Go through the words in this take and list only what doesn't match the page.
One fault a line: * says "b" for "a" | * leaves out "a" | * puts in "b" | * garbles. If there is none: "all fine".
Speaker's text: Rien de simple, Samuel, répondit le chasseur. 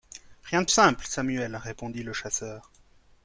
all fine